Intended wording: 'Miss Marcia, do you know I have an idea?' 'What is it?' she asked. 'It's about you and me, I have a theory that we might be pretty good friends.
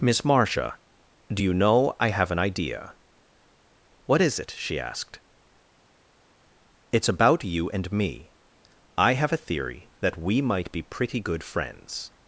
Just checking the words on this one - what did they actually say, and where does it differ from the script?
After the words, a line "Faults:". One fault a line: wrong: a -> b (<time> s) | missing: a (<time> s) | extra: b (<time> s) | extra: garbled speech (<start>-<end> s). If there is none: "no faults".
'Miss Marcia, do you know I have an idea?' 'What is it?' she asked. 'It's about you and me, I have a theory that we might be pretty good friends.
Faults:
no faults